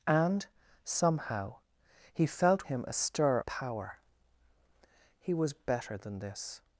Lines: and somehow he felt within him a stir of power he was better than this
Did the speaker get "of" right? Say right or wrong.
wrong